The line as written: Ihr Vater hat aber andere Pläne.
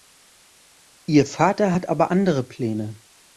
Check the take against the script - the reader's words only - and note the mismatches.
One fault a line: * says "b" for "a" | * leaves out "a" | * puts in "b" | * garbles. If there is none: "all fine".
all fine